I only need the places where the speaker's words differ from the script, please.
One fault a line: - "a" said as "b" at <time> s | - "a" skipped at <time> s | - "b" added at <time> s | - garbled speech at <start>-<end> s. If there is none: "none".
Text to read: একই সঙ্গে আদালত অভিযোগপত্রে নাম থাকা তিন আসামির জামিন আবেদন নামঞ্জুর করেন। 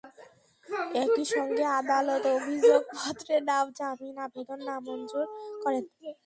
- "থাকা তিন আসামির" skipped at 3.6 s